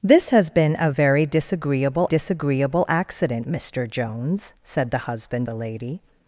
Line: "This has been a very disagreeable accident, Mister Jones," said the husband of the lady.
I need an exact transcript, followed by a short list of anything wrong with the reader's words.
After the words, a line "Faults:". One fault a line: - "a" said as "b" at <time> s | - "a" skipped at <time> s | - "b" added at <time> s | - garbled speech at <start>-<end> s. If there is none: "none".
"This has been a very disagreeable disagreeable accident, Mister Jones," said the husband the lady.
Faults:
- "disagreeable" added at 2.0 s
- "of" skipped at 5.5 s